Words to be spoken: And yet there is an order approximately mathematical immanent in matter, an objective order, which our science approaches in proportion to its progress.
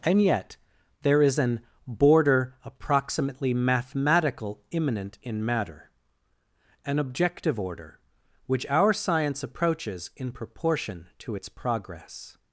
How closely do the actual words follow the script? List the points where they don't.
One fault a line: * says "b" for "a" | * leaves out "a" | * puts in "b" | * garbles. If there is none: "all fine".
* says "border" for "order"